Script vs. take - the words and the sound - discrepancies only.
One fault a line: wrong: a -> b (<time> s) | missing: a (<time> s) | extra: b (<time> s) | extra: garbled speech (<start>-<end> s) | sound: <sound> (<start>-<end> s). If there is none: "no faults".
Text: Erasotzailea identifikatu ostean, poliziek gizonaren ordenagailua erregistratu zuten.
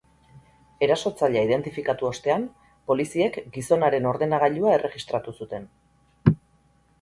no faults